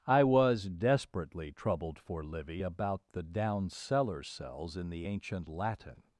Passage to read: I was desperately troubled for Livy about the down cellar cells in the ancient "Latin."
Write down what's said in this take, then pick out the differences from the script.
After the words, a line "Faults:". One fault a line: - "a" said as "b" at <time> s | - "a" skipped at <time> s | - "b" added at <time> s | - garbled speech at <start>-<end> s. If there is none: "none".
I was desperately troubled for Livy about the down cellar cells in the ancient "Latin."
Faults:
none